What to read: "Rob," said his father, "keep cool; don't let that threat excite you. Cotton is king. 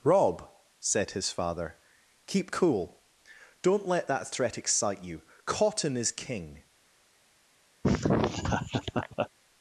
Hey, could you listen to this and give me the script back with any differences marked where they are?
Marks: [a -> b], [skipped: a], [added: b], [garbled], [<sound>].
"Rob," said his father, "keep cool; don't let that threat excite you. Cotton is king. [laugh]